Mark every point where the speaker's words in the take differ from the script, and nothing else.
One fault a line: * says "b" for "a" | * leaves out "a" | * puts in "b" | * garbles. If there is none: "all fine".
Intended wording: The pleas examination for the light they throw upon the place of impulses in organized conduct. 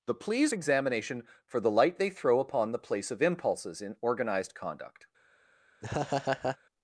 all fine